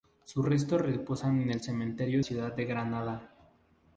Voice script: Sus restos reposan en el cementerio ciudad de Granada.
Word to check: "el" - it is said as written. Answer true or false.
true